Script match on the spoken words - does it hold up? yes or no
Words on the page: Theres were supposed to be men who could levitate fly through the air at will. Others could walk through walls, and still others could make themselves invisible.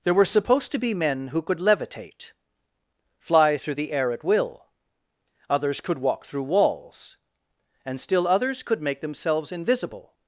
no